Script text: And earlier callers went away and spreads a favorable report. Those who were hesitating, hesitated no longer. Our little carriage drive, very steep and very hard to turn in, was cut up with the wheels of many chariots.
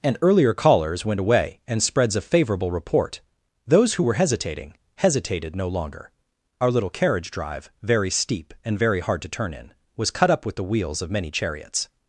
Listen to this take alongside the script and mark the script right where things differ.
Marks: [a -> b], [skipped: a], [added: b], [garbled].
And earlier callers went away and spreads a favorable report. Those who were hesitating, hesitated no longer. Our little carriage drive, very steep and very hard to turn in, was cut up with the wheels of many chariots.